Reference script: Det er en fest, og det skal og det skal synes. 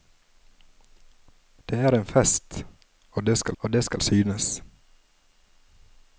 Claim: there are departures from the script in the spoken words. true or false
false